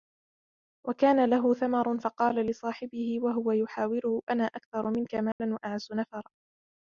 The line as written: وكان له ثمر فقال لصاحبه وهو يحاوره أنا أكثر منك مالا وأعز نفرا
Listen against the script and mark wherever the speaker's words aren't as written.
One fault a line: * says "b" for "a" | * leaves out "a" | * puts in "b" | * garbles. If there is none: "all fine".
all fine